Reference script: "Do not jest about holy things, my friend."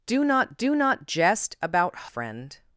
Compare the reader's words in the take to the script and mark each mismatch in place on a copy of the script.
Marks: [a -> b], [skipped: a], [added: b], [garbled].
"Do not [added: do not] jest about [skipped: holy things, my] friend."